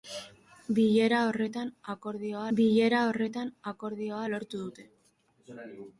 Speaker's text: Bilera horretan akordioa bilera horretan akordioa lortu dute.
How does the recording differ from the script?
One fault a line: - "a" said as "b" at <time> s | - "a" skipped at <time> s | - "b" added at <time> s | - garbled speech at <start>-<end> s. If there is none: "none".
none